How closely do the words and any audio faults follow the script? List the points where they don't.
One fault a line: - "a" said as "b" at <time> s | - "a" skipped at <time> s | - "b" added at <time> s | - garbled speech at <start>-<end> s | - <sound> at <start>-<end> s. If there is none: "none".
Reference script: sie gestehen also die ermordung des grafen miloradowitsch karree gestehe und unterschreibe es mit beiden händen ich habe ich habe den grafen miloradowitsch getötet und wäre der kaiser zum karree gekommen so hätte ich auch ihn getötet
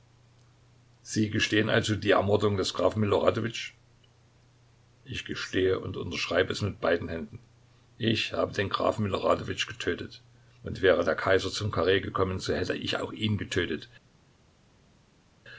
- "karree" said as "ich" at 5.0 s
- "ich habe" skipped at 8.5 s